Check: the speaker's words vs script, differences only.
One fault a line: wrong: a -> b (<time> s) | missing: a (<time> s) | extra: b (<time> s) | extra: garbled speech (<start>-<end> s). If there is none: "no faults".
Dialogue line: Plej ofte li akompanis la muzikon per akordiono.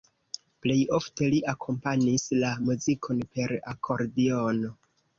no faults